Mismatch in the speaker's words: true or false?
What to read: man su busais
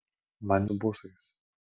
false